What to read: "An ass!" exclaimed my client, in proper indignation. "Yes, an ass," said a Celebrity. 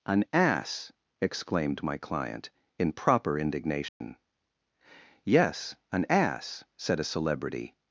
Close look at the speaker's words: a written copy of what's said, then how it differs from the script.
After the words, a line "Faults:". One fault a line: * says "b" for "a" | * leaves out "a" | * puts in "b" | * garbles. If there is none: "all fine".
"An ass!" exclaimed my client, in proper indignation. "Yes, an ass," said a Celebrity.
Faults:
all fine